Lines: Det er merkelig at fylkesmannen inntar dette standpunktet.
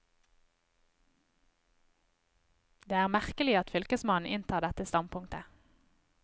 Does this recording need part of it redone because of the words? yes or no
no